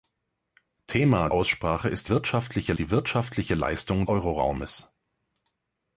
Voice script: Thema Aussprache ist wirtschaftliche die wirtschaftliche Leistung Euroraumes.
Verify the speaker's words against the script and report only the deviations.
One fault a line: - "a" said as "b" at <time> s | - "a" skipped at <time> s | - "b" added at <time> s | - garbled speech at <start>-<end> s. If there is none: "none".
none